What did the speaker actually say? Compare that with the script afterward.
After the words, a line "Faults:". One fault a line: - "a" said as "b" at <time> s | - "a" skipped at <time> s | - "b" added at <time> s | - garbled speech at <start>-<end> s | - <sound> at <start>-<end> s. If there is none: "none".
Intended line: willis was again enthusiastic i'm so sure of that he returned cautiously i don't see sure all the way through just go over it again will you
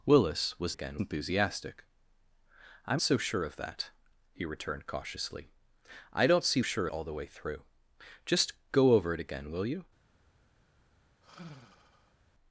willis was again enthusiastic i'm so sure of that he returned cautiously i don't see sure all the way through just go over it again will you
Faults:
- sigh at 11.2-12.2 s